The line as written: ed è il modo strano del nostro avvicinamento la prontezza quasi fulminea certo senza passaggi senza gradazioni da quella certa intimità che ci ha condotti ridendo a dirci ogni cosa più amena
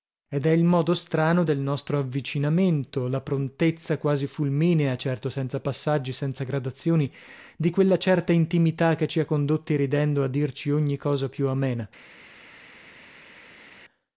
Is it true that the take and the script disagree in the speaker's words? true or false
true